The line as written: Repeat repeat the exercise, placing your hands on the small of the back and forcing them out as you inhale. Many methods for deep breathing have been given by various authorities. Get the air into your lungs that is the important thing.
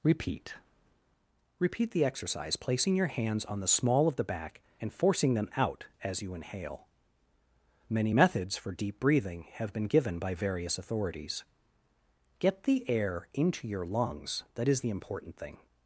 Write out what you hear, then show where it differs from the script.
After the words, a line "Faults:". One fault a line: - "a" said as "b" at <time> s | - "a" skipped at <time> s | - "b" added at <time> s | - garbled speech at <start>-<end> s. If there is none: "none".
Repeat repeat the exercise, placing your hands on the small of the back and forcing them out as you inhale. Many methods for deep breathing have been given by various authorities. Get the air into your lungs that is the important thing.
Faults:
none